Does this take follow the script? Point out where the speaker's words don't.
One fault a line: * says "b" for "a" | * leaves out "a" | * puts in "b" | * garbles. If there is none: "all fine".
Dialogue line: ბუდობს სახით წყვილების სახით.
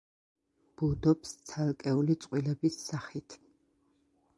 * says "ცალკეული" for "სახით"